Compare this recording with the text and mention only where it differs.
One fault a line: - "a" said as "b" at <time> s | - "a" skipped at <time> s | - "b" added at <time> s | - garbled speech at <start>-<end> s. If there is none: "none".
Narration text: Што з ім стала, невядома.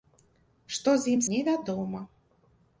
- "стала" skipped at 1.2 s